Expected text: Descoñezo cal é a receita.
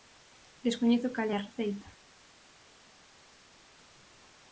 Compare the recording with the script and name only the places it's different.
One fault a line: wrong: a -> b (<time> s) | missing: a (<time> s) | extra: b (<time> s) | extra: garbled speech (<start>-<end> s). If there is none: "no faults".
no faults